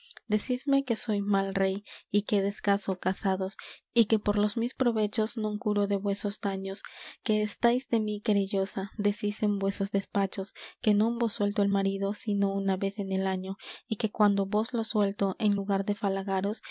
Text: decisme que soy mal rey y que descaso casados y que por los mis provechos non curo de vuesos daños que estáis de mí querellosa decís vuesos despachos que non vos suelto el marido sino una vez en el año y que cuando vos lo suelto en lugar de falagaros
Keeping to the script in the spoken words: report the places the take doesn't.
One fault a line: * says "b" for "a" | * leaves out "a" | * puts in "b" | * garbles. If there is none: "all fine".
* puts in "en"